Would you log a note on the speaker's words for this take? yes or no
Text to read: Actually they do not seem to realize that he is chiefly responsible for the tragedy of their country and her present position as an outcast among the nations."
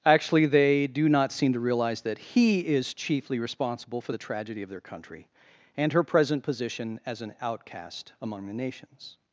no